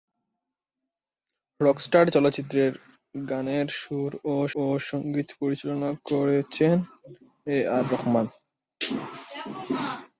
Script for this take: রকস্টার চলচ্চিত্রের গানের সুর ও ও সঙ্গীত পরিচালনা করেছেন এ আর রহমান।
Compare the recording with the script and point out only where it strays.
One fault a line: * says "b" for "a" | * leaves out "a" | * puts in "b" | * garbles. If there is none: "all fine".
all fine